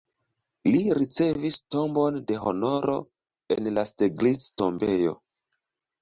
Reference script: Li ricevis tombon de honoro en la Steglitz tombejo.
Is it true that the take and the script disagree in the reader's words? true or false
false